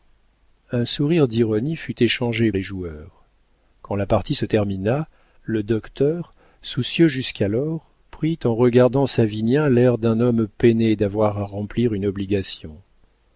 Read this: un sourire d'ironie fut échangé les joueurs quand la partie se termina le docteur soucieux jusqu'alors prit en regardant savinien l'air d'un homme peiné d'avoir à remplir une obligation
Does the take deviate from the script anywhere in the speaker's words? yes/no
no